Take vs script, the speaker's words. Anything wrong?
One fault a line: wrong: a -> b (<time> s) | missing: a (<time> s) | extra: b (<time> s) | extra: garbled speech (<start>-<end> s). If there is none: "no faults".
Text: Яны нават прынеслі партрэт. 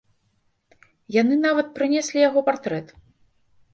extra: яго (2.3 s)